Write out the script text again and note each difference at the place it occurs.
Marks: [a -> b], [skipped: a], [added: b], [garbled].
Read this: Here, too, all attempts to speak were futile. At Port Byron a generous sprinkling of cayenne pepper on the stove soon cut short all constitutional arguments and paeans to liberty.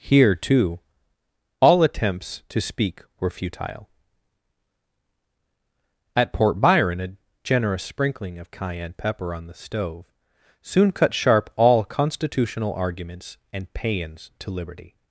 Here, too, all attempts to speak were futile. At Port Byron a generous sprinkling of cayenne pepper on the stove soon cut [short -> sharp] all constitutional arguments and paeans to liberty.